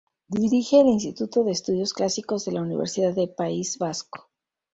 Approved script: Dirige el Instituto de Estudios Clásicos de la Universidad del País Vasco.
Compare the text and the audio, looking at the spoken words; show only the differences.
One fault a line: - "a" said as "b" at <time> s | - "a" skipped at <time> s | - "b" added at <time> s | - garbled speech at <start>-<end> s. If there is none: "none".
none